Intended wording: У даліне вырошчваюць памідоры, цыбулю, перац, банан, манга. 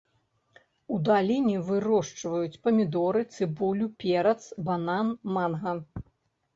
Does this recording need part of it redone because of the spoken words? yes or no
no